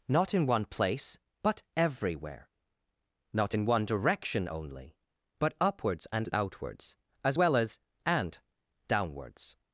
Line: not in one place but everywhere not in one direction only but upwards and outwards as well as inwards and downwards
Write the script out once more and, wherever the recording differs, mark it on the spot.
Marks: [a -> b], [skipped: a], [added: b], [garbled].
not in one place but everywhere not in one direction only but upwards and outwards as well as [skipped: inwards] and downwards